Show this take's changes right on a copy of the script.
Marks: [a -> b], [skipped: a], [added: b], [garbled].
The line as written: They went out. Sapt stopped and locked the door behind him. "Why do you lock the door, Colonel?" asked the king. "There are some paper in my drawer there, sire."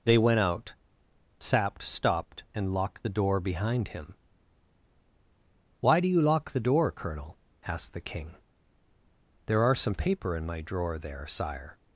They went out. Sapt stopped and locked the door behind him. "Why do you lock the door, Colonel?" asked the king. "There are some paper in my drawer there, sire."